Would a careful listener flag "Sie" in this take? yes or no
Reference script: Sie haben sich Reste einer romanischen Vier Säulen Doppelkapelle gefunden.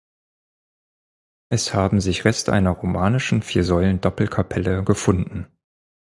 yes